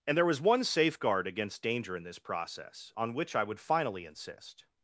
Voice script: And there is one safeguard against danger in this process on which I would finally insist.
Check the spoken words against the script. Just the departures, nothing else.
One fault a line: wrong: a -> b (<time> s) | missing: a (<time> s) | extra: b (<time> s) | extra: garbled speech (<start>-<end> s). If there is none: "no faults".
wrong: is -> was (0.2 s)